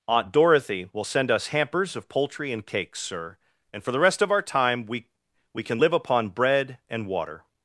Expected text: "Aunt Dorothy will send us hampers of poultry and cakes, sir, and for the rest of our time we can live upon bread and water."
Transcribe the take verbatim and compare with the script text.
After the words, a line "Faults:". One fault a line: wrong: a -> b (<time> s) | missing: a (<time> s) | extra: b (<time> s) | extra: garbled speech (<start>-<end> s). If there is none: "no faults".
"Aunt Dorothy will send us hampers of poultry and cakes, sir, and for the rest of our time we we can live upon bread and water."
Faults:
extra: we (5.5 s)